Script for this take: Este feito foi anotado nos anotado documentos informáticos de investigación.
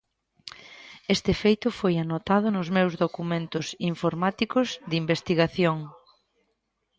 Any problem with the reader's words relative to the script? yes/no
yes